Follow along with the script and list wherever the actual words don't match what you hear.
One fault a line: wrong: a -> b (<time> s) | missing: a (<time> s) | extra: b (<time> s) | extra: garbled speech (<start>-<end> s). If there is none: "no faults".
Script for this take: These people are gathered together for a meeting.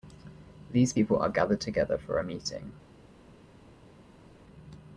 no faults